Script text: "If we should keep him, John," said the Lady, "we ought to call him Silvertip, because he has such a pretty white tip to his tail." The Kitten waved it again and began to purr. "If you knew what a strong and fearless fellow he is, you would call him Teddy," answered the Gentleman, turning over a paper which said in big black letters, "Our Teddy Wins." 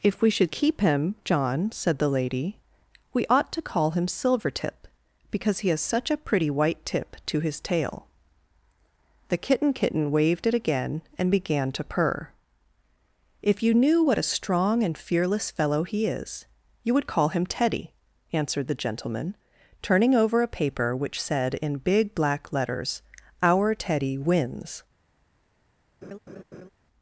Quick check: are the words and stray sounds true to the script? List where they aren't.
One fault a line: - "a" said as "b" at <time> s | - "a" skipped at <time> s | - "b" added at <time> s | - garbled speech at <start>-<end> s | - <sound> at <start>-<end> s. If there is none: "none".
- "Kitten" added at 9.7 s
- laugh at 26.0-26.7 s